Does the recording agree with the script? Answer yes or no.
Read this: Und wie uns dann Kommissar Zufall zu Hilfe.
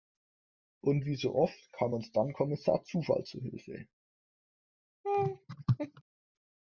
no